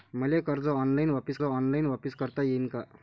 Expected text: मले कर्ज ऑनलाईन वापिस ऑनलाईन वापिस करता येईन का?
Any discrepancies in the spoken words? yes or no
no